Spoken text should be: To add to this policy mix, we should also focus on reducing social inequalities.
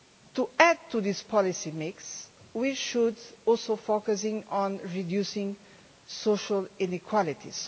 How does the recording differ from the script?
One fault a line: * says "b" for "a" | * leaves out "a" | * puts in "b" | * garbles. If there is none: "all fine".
all fine